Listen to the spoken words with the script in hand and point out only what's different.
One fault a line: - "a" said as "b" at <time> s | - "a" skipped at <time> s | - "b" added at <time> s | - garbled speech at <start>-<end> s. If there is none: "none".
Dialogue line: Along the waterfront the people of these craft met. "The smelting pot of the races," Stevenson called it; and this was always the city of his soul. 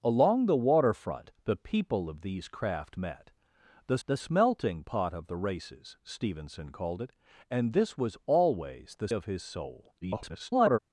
- "the" added at 4.1 s
- "city" skipped at 9.1 s
- garbled speech at 10.0-10.8 s